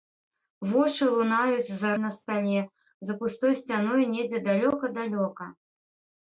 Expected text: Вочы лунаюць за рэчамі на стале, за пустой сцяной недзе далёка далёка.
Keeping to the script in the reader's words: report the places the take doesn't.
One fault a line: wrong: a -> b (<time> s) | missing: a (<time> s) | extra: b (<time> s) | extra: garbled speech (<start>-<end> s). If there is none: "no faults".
missing: рэчамі (1.9 s)